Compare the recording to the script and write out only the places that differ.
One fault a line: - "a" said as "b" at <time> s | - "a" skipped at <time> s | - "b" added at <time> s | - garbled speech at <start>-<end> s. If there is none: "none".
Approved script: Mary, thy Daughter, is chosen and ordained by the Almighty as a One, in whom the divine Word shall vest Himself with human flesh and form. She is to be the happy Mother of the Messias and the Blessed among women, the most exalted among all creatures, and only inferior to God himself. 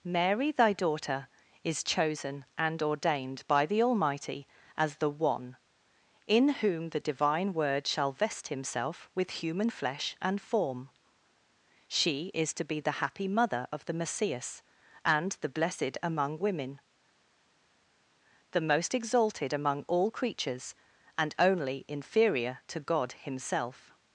- "a" said as "the" at 5.0 s